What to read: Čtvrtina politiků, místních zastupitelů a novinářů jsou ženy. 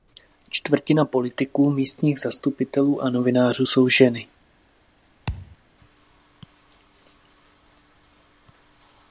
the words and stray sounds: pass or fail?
fail